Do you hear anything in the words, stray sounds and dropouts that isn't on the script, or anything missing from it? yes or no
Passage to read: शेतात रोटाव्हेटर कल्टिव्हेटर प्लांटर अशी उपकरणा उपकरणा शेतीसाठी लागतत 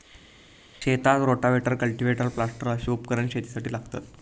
yes